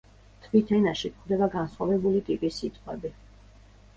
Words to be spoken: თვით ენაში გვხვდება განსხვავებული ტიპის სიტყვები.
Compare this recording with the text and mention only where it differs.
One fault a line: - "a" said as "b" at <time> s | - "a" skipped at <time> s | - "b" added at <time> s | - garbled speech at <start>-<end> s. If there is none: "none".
none